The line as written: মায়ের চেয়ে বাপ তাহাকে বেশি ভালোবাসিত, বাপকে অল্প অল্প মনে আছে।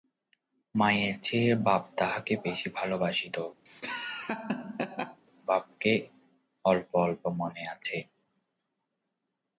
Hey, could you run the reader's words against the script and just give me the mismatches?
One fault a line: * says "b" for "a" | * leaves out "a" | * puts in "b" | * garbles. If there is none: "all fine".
all fine